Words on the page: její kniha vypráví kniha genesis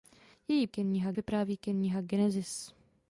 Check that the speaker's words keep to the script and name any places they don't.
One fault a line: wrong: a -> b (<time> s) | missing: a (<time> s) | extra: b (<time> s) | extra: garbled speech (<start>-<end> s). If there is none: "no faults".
no faults